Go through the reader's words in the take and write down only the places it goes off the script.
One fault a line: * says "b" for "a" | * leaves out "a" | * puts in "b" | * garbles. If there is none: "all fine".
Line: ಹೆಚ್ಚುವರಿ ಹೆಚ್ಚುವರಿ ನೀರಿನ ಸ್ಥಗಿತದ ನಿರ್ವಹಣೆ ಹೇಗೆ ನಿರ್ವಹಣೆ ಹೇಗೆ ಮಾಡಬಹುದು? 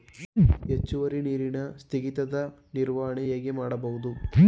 * leaves out "ಹೆಚ್ಚುವರಿ"
* leaves out "ನಿರ್ವಹಣೆ ಹೇಗೆ"